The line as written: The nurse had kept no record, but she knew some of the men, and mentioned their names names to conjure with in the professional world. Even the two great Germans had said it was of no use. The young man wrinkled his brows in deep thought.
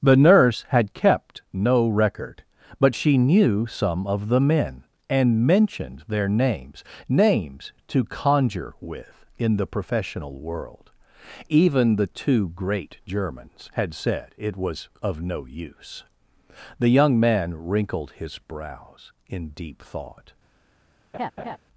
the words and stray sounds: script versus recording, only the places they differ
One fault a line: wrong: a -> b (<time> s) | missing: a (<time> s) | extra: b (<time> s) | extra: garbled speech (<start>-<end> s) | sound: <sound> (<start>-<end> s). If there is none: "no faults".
sound: laugh (21.1-21.6 s)